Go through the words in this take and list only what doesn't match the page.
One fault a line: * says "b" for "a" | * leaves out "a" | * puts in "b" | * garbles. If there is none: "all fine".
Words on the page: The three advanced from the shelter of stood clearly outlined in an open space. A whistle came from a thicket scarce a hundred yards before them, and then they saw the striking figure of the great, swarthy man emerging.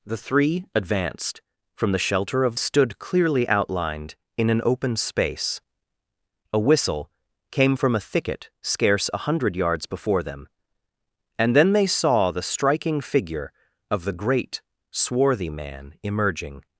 all fine